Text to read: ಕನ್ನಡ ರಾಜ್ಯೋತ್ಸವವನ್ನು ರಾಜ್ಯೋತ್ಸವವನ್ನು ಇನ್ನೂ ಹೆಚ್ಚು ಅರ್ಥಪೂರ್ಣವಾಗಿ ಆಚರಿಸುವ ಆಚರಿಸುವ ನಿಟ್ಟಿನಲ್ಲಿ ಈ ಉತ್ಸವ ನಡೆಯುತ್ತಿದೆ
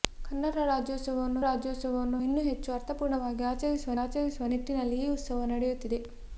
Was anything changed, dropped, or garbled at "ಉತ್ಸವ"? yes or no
no